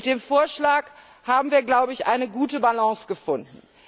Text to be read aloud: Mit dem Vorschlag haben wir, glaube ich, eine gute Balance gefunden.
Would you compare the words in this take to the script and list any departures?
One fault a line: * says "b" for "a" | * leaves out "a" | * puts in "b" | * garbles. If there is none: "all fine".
all fine